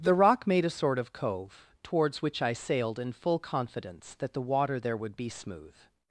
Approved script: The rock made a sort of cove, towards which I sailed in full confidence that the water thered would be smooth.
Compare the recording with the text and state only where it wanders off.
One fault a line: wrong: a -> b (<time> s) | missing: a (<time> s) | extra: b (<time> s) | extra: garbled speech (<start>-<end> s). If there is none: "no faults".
wrong: thered -> there (4.8 s)